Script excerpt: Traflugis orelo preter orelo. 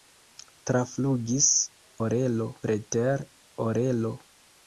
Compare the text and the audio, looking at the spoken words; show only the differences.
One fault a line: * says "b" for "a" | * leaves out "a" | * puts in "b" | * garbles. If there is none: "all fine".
all fine